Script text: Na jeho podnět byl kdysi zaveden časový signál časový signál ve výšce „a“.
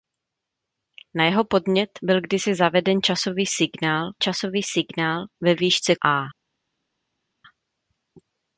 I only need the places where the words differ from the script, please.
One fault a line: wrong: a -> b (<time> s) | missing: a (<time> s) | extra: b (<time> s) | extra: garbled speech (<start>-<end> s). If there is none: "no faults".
no faults